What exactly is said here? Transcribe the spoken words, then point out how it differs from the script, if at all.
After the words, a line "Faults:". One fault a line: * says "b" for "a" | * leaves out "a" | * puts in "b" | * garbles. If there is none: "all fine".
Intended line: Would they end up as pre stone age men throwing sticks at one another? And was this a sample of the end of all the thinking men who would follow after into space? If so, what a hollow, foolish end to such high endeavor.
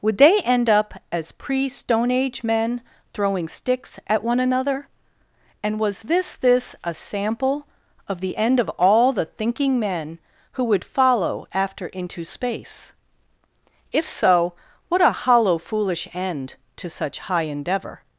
Would they end up as pre stone age men throwing sticks at one another? And was this this a sample of the end of all the thinking men who would follow after into space? If so, what a hollow, foolish end to such high endeavor.
Faults:
* puts in "this"